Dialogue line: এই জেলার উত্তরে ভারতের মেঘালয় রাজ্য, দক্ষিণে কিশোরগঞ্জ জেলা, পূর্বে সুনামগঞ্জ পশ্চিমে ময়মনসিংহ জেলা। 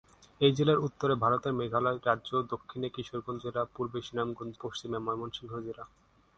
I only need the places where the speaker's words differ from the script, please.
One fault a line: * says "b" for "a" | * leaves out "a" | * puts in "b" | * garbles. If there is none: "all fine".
all fine